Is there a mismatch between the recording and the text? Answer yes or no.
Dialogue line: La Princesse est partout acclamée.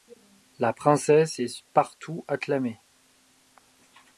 no